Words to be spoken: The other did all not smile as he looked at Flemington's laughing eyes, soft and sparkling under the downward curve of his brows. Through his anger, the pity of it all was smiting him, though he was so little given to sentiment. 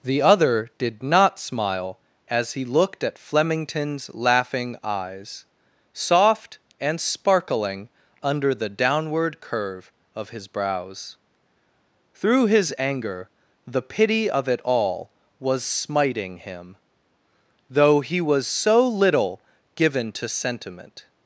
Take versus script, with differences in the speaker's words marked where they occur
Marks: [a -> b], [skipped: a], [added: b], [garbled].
The other did [skipped: all] not smile as he looked at Flemington's laughing eyes, soft and sparkling under the downward curve of his brows. Through his anger, the pity of it all was smiting him, though he was so little given to sentiment.